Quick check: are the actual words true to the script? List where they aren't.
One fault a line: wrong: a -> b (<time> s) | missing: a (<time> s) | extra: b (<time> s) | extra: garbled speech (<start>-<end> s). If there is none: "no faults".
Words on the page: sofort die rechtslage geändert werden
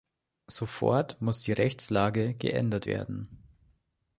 extra: muss (1.2 s)